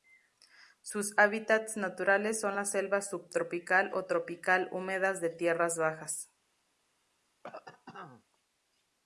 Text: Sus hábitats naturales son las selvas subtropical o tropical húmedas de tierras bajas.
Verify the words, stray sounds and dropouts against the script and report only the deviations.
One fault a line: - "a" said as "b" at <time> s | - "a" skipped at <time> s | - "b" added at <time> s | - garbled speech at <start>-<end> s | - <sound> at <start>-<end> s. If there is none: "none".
- cough at 7.4-8.2 s